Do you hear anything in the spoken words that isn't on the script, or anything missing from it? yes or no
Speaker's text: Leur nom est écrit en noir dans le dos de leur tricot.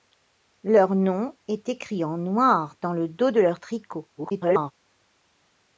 yes